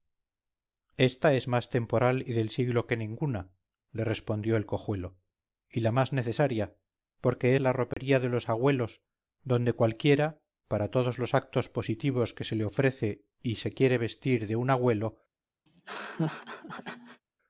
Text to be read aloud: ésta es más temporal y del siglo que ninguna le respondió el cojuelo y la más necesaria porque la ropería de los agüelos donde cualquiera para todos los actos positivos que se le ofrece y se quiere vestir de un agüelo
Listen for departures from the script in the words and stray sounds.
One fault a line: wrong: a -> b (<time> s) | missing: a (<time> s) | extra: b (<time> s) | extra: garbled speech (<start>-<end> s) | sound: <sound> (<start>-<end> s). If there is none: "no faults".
sound: dropout (7.9-8.0 s)
sound: laugh (15.7-17.2 s)